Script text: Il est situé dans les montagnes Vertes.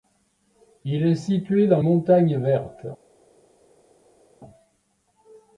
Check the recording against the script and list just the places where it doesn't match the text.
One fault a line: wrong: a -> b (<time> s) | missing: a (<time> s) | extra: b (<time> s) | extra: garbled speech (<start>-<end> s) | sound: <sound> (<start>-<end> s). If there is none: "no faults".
missing: les (1.8 s)